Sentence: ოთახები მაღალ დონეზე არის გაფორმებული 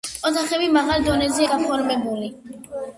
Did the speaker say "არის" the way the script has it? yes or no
no